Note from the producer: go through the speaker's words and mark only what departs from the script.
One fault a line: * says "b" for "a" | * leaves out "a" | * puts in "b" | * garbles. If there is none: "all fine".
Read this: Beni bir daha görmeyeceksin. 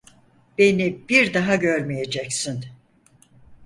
all fine